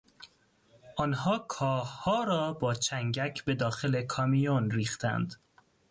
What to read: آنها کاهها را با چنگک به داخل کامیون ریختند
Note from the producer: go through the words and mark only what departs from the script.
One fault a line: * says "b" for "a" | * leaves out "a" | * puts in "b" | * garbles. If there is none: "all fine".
all fine